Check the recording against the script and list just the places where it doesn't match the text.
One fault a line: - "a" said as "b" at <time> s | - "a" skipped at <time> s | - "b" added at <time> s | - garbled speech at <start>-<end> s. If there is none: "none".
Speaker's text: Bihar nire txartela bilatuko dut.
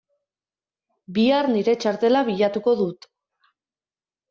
none